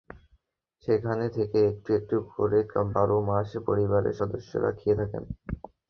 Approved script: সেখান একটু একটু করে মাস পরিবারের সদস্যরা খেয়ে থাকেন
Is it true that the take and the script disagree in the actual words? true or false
true